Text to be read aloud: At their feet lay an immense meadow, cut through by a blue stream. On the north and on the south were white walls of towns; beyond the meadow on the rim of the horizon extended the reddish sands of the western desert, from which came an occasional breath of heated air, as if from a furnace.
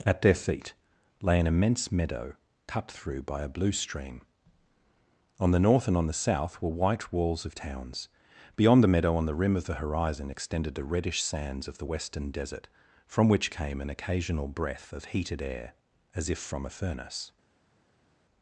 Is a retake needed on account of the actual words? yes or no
no